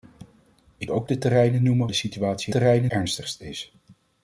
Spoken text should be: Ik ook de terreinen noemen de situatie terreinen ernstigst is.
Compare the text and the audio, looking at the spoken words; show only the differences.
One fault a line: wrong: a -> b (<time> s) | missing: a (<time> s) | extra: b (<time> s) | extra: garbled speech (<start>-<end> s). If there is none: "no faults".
no faults